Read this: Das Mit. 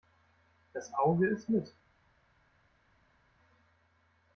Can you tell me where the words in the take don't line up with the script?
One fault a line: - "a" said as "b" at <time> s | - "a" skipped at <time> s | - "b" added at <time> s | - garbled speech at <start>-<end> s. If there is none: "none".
- "Auge isst" added at 0.9 s